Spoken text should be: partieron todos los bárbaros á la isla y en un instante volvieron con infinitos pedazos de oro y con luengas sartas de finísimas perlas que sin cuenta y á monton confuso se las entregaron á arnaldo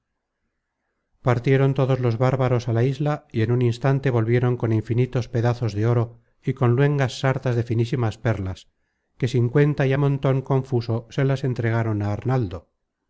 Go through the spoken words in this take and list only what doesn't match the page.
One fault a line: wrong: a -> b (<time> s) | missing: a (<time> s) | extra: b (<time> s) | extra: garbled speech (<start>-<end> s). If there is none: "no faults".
no faults